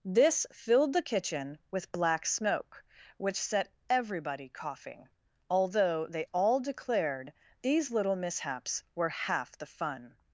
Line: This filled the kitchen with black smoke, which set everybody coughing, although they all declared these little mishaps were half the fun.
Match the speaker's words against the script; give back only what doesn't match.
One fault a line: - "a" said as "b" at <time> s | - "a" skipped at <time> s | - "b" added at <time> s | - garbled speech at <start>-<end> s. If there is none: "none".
none